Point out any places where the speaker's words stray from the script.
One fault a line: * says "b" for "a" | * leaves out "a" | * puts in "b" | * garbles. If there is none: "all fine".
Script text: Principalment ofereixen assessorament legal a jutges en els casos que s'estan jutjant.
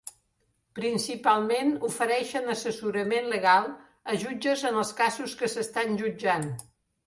all fine